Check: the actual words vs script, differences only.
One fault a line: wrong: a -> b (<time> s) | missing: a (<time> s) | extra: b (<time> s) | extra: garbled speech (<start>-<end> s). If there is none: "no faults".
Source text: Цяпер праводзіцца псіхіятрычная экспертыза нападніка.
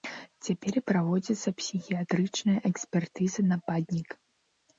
no faults